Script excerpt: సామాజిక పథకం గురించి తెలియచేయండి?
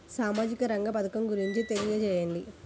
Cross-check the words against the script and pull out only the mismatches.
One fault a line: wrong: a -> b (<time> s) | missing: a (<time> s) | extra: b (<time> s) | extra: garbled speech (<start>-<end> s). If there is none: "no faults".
extra: రంగ (0.6 s)